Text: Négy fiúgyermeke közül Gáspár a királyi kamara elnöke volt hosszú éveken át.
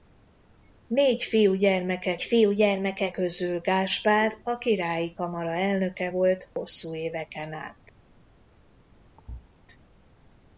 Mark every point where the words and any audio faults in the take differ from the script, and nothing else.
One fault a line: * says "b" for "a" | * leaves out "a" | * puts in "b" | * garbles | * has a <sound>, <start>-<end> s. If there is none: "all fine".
* puts in "fiúgyermeke"
* has a dropout, 6.5-6.6 s
* has a thud, 9.2-9.5 s